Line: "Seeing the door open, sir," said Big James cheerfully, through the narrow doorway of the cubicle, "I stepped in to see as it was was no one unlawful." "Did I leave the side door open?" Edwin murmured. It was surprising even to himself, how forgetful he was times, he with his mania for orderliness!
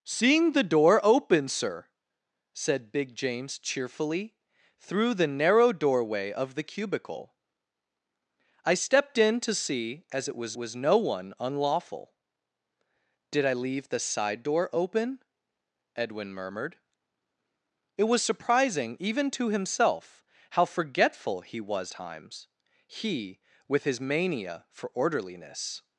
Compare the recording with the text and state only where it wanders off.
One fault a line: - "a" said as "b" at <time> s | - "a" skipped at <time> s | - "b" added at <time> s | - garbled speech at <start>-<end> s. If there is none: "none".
none